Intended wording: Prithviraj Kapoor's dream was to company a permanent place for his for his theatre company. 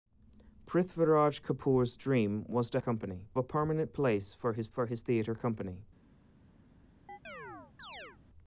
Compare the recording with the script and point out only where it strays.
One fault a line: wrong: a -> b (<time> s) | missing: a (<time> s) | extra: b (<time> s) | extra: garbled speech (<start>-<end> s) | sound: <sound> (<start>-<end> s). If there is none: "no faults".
sound: chirp (7.1-8.2 s)